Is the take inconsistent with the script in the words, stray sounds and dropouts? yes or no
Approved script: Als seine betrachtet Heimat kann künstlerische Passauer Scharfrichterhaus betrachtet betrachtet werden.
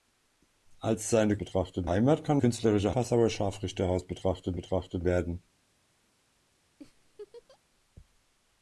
yes